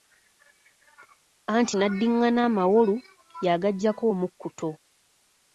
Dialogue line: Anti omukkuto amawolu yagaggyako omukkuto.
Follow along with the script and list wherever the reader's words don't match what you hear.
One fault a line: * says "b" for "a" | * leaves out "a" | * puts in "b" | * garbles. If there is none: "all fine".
* says "n'addingana" for "omukkuto"